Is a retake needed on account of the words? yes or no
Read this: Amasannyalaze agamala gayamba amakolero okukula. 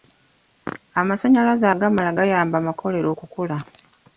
no